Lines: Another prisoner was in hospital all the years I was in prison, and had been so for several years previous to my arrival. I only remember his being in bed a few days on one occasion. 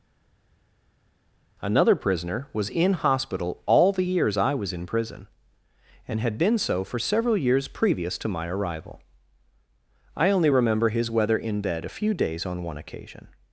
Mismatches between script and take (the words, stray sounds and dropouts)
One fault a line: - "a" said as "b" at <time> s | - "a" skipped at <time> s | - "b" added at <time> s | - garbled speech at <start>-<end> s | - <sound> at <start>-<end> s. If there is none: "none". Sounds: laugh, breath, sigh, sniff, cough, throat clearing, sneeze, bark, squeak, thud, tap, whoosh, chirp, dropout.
- "being" said as "weather" at 11.1 s